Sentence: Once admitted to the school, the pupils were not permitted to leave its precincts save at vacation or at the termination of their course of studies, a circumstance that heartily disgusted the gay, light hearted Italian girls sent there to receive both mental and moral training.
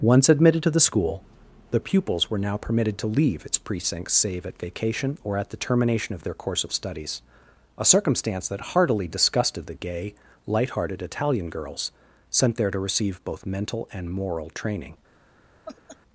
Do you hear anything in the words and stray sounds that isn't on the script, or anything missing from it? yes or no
yes